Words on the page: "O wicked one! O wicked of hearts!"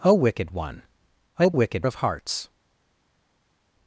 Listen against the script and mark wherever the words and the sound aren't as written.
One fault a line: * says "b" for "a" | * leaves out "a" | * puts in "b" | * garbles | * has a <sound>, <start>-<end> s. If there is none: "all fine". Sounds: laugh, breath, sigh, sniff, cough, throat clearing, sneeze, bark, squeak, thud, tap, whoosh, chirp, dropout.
all fine